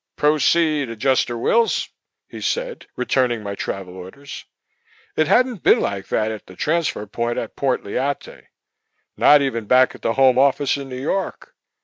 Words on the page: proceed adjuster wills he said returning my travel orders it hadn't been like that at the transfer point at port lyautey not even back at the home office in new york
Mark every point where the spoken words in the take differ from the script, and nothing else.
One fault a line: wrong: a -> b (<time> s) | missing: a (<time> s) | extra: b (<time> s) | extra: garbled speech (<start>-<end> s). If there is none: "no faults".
no faults